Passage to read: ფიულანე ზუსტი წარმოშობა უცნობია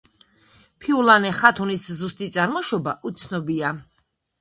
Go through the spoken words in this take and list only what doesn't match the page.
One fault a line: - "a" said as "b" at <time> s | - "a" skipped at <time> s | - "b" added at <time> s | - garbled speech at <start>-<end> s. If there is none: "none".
- "ხათუნის" added at 1.4 s